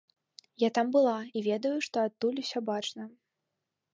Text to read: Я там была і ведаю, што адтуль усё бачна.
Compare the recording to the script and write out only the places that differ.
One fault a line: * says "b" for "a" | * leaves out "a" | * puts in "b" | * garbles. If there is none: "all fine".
all fine